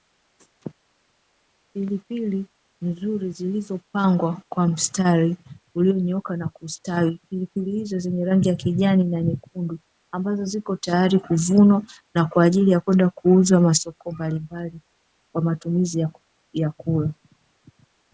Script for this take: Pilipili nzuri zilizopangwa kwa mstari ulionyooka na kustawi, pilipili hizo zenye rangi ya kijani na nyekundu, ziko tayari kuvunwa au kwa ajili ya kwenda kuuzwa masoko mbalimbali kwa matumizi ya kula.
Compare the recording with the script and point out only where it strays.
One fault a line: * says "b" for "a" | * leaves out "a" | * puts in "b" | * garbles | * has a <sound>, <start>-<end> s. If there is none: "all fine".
* puts in "ambazo"
* says "na" for "au"